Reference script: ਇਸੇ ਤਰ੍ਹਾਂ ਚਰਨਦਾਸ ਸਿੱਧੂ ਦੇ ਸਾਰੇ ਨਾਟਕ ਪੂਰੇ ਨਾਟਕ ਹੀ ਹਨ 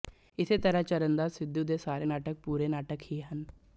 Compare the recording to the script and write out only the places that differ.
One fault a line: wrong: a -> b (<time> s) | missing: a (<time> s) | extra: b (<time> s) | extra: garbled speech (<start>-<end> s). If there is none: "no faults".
no faults